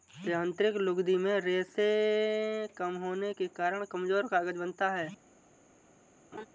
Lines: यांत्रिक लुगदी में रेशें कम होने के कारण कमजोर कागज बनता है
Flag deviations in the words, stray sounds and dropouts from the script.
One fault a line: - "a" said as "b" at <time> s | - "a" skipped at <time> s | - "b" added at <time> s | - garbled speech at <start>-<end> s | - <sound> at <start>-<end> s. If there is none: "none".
- laugh at 6.3-6.5 s